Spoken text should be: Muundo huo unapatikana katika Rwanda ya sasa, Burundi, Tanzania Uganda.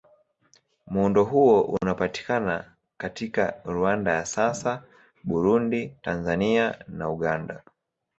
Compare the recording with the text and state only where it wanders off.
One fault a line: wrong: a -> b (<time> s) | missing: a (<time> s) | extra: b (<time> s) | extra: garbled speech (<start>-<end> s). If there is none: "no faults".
extra: na (6.9 s)